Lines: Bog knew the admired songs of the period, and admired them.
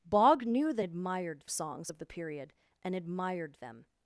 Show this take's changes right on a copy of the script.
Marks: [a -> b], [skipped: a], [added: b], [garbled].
Bog knew the admired songs of the period, and admired them.